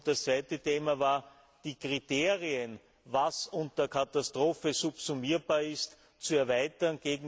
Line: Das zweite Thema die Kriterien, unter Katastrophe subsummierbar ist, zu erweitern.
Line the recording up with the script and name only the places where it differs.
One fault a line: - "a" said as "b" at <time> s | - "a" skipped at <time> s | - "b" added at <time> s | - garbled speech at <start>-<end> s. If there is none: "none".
- "war" added at 1.0 s
- "was" added at 3.0 s